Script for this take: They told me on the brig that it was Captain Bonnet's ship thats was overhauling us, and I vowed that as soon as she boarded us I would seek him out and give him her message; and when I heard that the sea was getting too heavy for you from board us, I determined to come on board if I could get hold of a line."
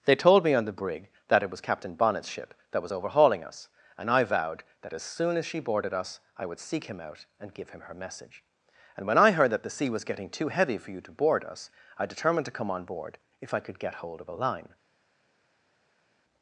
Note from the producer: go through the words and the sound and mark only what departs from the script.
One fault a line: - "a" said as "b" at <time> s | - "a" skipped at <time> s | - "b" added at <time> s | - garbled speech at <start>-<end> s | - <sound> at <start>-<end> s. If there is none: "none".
- "thats" said as "that" at 2.7 s
- "from" said as "to" at 11.0 s